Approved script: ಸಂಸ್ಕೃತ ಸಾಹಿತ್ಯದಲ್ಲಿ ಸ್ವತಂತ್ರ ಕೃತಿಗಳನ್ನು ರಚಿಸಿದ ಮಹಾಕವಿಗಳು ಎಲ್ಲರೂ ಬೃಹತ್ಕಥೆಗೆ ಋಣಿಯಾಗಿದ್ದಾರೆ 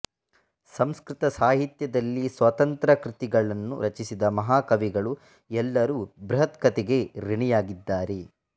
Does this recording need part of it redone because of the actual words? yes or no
no